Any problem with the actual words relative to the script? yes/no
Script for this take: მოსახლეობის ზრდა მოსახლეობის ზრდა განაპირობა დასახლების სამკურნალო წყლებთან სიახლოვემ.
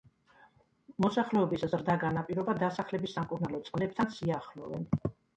yes